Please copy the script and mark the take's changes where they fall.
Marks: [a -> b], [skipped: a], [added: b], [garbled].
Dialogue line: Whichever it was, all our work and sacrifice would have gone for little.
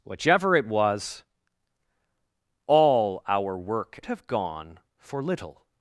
Whichever it was, all our work [skipped: and sacrifice would] have gone for little.